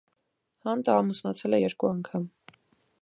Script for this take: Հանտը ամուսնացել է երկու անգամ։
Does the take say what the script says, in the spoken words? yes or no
yes